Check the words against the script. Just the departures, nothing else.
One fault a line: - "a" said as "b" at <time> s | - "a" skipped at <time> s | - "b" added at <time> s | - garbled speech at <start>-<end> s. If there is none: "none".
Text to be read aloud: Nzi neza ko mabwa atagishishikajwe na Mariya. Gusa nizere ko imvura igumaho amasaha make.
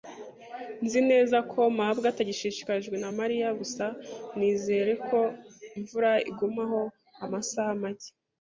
none